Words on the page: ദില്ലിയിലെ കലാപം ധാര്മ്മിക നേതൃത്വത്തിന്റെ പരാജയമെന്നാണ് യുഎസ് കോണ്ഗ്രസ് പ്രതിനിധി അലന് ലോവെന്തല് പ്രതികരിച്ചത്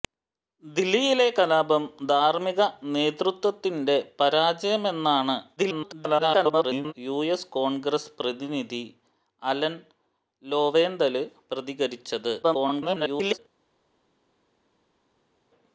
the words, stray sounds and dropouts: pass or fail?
fail